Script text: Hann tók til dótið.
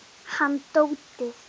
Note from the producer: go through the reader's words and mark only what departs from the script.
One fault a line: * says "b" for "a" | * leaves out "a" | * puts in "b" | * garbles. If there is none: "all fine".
* leaves out "tók til"